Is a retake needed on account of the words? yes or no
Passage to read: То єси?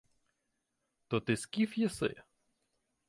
yes